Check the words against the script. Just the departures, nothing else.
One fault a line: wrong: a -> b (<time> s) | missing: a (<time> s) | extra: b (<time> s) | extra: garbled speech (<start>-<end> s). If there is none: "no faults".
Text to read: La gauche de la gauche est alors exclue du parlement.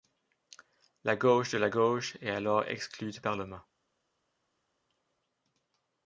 no faults